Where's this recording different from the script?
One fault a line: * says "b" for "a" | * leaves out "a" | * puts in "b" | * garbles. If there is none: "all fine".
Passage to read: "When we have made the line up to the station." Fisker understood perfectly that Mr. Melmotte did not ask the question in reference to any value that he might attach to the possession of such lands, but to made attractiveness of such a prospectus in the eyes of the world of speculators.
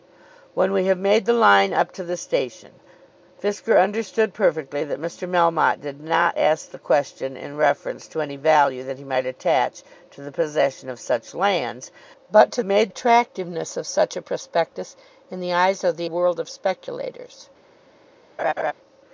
all fine